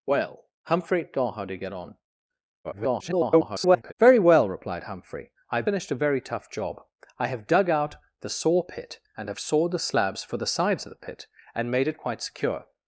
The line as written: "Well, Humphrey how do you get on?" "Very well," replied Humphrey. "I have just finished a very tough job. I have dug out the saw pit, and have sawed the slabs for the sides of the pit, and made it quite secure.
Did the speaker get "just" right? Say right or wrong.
wrong